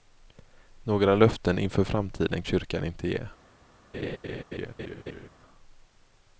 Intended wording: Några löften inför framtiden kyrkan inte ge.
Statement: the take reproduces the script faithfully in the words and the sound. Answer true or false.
false